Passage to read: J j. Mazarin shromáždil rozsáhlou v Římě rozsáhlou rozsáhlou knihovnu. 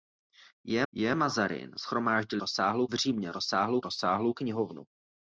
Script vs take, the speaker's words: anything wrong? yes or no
no